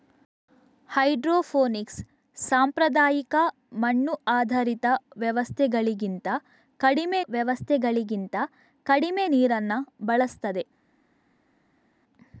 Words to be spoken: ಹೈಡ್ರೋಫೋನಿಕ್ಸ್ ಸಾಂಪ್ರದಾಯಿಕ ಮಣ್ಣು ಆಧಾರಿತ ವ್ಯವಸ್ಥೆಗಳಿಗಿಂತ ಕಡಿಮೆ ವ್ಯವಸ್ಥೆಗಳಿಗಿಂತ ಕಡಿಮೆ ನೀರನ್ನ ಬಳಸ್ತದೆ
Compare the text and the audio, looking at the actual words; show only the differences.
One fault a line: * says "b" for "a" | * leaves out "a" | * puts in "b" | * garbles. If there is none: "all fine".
all fine